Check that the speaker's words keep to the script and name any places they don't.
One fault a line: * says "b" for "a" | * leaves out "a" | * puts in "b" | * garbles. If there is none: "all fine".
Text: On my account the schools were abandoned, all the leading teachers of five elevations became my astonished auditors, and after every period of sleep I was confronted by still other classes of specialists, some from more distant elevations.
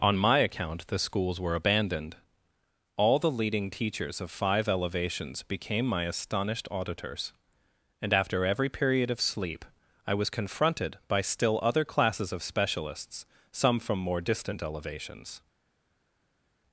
all fine